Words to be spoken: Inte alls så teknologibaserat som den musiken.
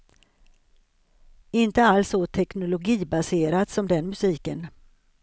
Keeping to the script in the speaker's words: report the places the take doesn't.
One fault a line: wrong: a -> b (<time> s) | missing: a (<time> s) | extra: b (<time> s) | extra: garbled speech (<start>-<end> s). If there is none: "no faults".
no faults